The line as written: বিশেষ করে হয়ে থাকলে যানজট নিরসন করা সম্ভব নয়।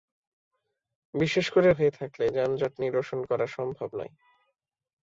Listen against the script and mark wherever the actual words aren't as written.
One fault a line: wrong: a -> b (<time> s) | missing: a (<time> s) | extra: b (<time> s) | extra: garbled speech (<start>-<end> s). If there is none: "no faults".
no faults